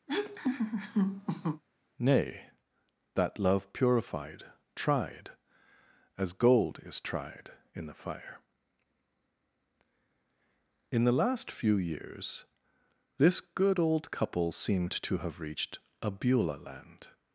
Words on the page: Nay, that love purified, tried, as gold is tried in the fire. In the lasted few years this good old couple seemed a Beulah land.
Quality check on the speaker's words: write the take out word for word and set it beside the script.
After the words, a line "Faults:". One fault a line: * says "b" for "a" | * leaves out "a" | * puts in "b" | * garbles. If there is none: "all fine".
Nay, that love purified, tried, as gold is tried in the fire. In the last few years this good old couple seemed to have reached a Beulah land.
Faults:
* says "last" for "lasted"
* puts in "to have reached"